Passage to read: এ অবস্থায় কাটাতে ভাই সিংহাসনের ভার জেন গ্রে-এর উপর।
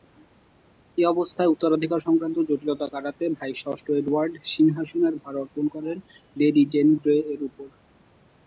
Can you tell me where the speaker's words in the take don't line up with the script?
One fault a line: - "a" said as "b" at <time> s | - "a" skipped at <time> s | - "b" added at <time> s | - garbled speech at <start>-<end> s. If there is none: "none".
- "উত্তরাধিকার সংক্রান্ত জটিলতা" added at 1.5 s
- "ষষ্ঠ এডওয়ার্ড" added at 3.5 s
- "অর্পণ করেন লেডি" added at 5.4 s